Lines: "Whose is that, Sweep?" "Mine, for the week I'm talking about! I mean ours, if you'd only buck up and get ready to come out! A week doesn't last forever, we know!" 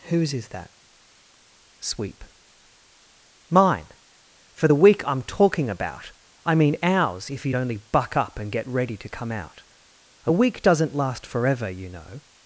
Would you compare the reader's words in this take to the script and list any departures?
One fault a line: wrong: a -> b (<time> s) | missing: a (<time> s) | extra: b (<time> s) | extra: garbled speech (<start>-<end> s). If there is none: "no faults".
wrong: we -> you (11.7 s)